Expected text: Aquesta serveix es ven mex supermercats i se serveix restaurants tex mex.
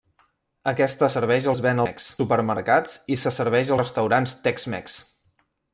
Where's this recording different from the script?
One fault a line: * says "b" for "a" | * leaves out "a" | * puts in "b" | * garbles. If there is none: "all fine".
all fine